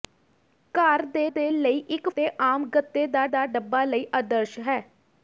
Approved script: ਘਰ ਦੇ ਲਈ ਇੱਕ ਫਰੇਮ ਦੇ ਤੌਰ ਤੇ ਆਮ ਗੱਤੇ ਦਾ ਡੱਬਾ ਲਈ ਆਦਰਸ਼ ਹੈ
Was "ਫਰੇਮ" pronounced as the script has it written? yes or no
no